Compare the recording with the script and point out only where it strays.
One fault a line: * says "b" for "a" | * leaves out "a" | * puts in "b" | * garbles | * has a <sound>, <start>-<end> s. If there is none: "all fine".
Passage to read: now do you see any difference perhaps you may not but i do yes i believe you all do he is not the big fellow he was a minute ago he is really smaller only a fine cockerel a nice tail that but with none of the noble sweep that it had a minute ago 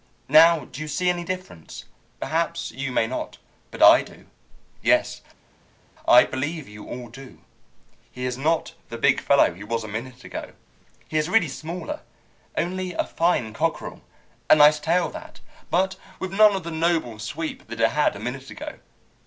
all fine